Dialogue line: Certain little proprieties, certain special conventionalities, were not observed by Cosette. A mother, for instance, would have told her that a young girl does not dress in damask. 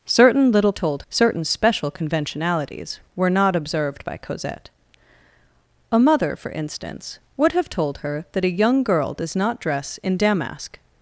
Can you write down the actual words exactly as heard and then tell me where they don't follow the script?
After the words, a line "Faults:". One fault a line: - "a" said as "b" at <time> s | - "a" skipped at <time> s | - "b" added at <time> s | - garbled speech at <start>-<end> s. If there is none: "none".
Certain little told, certain special conventionalities, were not observed by Cosette. A mother, for instance, would have told her that a young girl does not dress in damask.
Faults:
- "proprieties" said as "told" at 0.7 s